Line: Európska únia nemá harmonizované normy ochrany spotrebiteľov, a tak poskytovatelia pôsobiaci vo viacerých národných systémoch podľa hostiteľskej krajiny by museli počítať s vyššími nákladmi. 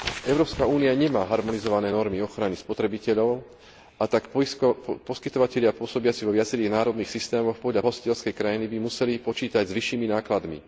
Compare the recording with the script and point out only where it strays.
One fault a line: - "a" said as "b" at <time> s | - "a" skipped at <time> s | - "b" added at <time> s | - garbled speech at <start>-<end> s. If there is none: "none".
none